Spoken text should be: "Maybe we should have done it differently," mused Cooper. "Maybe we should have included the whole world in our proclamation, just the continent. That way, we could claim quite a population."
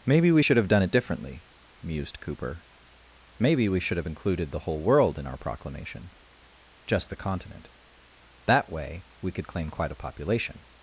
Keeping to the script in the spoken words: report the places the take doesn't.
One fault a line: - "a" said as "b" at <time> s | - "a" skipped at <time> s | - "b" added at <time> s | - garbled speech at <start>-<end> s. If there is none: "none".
none